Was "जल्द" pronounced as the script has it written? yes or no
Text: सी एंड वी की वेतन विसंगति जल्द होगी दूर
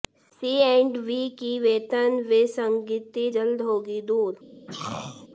yes